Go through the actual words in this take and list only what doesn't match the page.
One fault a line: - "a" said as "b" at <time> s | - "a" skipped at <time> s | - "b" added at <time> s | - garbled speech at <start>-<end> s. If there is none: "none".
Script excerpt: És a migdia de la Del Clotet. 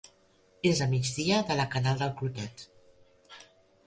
- "Canal" added at 1.7 s